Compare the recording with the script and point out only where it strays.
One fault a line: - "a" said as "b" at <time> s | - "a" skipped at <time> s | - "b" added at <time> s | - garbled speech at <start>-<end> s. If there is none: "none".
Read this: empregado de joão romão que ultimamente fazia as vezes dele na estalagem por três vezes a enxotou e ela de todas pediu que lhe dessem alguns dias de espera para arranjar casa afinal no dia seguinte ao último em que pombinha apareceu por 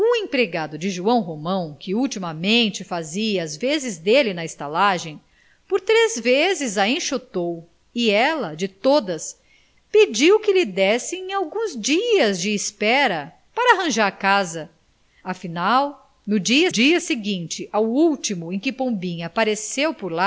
- "dia" added at 16.7 s